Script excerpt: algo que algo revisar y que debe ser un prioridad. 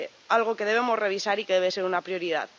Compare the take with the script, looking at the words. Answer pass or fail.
fail